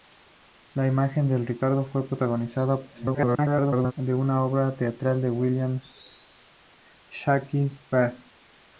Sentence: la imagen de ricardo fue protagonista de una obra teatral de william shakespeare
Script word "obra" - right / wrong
right